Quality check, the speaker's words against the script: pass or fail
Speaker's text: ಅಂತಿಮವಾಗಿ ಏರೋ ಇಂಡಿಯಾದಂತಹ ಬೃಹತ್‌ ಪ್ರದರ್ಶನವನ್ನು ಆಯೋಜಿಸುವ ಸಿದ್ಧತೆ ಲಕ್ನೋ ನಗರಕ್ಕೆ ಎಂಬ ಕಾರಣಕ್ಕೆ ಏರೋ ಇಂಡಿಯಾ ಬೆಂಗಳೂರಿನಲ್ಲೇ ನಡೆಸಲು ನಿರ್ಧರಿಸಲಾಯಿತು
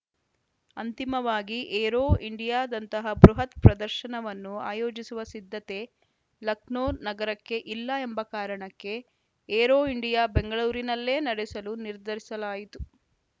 fail